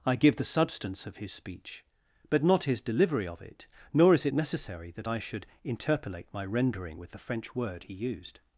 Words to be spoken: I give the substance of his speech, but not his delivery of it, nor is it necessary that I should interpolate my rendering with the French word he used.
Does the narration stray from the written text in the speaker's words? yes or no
no